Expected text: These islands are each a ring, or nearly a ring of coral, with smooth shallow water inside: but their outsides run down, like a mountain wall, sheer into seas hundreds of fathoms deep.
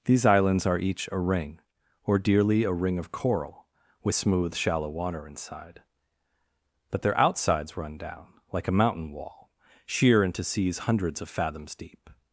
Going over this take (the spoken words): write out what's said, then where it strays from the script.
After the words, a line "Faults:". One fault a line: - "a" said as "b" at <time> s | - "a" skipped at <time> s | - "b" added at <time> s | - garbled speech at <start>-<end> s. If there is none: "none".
These islands are each a ring, or dearly a ring of coral, with smooth shallow water inside: but their outsides run down, like a mountain wall, sheer into seas hundreds of fathoms deep.
Faults:
- "nearly" said as "dearly" at 2.2 s